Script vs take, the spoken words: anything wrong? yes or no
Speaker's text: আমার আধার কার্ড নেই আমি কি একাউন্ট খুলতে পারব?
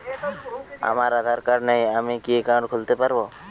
no